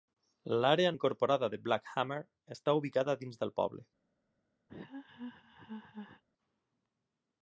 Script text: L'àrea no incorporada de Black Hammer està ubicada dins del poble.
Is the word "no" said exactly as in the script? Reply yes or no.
no